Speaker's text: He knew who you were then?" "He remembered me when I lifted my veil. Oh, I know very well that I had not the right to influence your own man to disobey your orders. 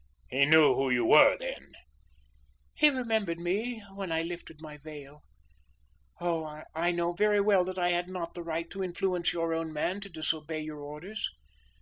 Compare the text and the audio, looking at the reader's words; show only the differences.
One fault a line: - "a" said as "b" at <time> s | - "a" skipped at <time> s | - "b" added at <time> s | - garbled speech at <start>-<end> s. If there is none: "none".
none